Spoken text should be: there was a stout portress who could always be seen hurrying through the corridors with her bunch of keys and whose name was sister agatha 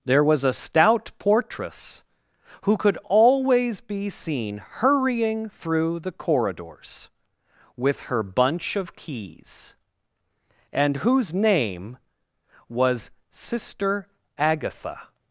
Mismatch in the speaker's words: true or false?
false